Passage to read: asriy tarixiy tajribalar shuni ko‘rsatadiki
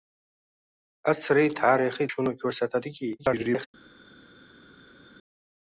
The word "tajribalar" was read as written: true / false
false